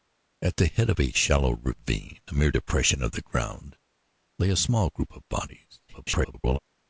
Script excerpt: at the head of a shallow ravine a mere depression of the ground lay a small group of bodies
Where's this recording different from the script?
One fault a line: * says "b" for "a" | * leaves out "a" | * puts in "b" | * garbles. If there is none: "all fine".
* garbles